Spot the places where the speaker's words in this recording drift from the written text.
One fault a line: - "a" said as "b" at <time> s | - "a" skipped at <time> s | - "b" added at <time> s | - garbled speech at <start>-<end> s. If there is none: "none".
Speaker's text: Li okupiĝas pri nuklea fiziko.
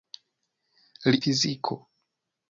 - "okupiĝas pri nuklea" skipped at 1.2 s